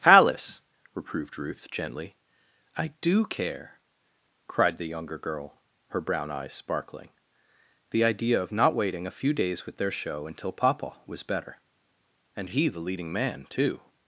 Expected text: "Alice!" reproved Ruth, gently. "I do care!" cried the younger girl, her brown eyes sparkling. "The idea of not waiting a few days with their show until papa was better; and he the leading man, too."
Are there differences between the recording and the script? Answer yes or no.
no